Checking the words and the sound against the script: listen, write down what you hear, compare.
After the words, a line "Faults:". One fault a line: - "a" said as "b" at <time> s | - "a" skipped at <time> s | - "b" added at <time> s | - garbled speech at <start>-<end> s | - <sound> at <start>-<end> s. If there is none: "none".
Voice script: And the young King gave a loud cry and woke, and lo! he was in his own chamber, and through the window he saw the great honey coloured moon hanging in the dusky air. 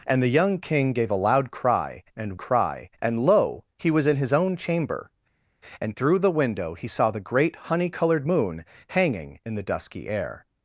And the young King gave a loud cry and cry, and lo! he was in his own chamber, and through the window he saw the great honey coloured moon hanging in the dusky air.
Faults:
- "woke" said as "cry" at 2.4 s